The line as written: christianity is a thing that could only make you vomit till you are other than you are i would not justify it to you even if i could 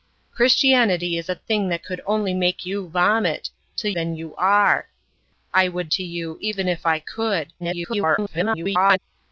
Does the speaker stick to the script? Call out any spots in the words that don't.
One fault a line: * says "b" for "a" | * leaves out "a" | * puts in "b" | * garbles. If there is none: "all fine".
* leaves out "you are other"
* leaves out "not justify it"
* garbles